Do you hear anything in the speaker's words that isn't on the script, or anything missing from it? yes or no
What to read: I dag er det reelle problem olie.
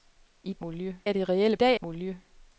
yes